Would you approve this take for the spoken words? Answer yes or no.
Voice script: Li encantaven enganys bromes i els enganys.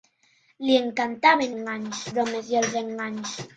yes